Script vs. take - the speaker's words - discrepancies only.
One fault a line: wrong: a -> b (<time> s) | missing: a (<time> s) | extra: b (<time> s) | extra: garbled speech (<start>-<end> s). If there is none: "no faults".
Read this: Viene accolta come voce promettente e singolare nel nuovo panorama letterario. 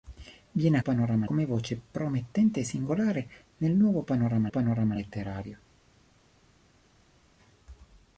wrong: accolta -> panorama (0.8 s)
extra: panorama (4.5 s)